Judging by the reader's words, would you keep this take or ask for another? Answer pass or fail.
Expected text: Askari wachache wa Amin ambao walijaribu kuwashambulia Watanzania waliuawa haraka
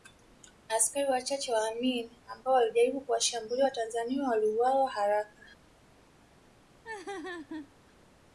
pass